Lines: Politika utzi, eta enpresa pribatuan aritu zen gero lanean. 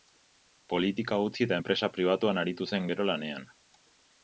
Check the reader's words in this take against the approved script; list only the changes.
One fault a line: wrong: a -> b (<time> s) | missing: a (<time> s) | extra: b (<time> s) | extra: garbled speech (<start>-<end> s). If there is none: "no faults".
no faults